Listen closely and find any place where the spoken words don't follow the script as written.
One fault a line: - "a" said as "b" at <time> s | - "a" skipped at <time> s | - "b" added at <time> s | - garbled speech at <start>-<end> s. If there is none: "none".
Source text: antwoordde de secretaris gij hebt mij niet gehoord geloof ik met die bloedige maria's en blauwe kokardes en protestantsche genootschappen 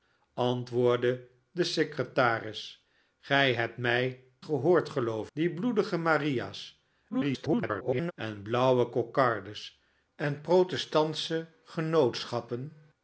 - "niet" skipped at 4.2 s
- "ik met" skipped at 5.3 s
- garbled speech at 7.1-8.1 s